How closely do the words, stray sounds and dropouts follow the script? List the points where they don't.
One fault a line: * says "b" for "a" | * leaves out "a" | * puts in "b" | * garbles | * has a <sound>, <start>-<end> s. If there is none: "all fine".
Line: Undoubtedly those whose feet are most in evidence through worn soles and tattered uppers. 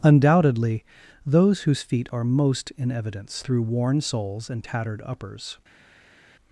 all fine